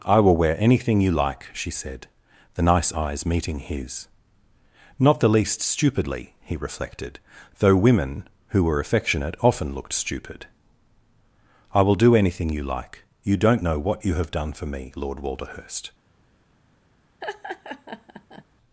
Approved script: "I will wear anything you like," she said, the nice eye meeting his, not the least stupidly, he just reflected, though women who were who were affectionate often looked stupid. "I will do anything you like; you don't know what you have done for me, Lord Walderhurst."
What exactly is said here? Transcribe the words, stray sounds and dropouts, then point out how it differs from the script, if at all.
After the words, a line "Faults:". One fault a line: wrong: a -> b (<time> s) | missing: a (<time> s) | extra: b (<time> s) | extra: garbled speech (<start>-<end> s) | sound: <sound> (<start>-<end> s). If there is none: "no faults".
"I will wear anything you like," she said, the nice eyes meeting his, not the least stupidly, he reflected, though women who were affectionate often looked stupid. "I will do anything you like; you don't know what you have done for me, Lord Walderhurst."
Faults:
wrong: eye -> eyes (2.9 s)
missing: just (6.6 s)
missing: who were (8.8 s)
sound: laugh (17.2-18.4 s)